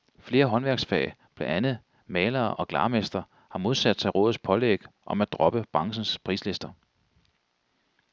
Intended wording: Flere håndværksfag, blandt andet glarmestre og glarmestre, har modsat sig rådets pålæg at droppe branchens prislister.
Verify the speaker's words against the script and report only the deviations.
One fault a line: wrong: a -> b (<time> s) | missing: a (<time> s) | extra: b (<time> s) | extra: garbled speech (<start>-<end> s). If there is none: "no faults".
wrong: glarmestre -> malere (2.1 s)
extra: om (5.1 s)